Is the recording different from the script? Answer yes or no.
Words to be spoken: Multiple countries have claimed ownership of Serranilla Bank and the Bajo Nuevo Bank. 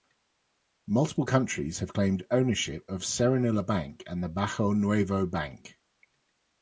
no